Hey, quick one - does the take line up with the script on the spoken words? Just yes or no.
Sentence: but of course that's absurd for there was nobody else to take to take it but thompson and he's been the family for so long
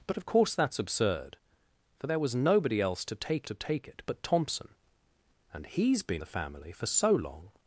yes